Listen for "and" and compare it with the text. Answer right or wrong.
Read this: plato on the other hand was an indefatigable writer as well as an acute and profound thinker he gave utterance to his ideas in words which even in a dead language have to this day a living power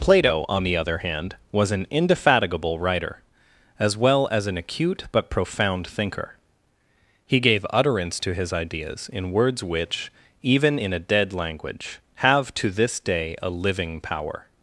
wrong